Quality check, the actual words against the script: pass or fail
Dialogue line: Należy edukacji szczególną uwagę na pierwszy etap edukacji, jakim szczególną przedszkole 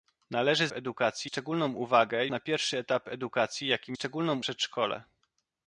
pass